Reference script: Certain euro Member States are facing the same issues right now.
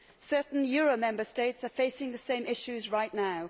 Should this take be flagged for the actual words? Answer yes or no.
no